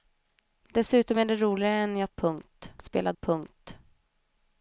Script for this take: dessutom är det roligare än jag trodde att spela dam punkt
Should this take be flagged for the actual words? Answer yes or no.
yes